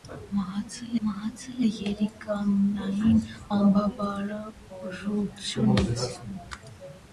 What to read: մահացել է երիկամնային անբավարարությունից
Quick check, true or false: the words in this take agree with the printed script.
false